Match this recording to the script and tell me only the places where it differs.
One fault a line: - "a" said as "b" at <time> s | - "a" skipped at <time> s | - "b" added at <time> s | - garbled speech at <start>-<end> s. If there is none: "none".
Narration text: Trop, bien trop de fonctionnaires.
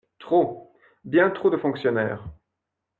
none